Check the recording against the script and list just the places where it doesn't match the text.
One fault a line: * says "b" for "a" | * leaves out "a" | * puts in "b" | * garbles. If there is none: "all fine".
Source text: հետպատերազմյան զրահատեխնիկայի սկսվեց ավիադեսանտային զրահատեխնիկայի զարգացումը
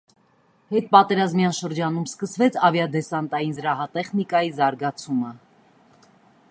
* says "շրջանում" for "զրահատեխնիկայի"